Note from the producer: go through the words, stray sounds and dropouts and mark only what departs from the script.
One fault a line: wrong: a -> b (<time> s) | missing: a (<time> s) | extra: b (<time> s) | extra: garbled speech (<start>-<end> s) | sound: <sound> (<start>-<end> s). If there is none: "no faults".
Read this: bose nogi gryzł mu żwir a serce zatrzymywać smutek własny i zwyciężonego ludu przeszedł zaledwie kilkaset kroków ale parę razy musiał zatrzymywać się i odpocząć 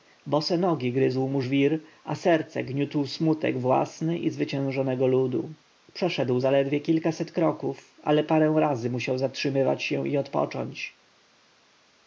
wrong: zatrzymywać -> gniótł (2.6 s)